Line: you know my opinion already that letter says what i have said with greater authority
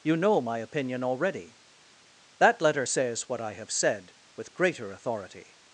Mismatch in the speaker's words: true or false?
false